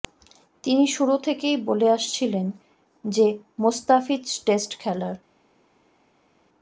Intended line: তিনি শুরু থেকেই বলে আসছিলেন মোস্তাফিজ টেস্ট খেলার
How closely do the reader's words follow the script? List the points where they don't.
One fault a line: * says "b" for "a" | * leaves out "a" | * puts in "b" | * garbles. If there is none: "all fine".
* puts in "যে"